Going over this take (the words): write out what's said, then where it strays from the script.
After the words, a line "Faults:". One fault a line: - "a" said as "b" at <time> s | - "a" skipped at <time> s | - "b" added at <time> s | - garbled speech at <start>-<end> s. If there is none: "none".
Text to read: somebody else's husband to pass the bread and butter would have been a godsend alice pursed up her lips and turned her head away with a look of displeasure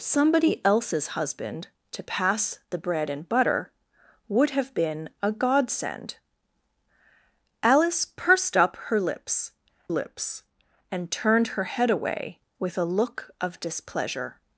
somebody else's husband to pass the bread and butter would have been a godsend alice pursed up her lips lips and turned her head away with a look of displeasure
Faults:
- "lips" added at 9.9 s